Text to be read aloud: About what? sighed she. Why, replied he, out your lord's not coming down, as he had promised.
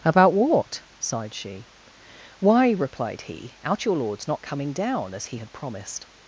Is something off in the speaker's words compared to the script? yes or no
no